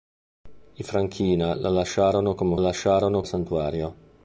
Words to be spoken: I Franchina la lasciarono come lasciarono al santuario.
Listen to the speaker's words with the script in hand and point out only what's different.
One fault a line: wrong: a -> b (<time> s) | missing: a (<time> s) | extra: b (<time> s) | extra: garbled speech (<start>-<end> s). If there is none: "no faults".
no faults